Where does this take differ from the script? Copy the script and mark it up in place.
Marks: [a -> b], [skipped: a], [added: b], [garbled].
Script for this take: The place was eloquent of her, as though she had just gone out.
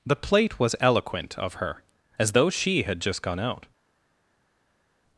The [place -> plate] was eloquent of her, as though she had just gone out.